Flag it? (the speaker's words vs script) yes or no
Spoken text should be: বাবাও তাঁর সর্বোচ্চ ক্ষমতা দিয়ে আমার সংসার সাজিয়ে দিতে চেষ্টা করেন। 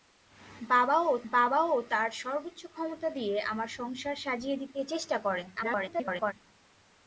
yes